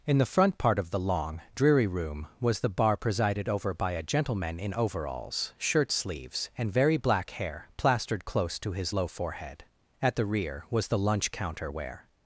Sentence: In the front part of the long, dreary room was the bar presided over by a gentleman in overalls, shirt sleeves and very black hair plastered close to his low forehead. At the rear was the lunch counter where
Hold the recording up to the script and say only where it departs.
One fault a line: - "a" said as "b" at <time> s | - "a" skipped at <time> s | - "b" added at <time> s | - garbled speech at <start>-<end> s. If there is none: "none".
none